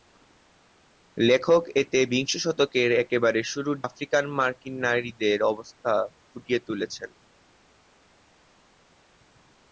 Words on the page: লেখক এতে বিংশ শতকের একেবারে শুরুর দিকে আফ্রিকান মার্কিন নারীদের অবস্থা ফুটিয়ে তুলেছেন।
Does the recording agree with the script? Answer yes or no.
no